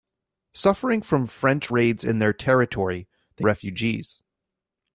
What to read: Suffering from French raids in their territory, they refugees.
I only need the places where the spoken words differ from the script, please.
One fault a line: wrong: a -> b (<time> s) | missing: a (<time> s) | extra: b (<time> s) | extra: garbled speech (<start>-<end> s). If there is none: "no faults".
no faults